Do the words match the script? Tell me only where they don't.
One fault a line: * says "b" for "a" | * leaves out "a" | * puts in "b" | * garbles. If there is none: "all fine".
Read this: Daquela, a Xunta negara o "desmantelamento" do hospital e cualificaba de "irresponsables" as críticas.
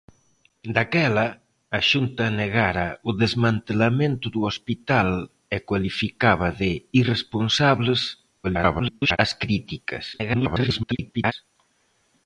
* garbles
* garbles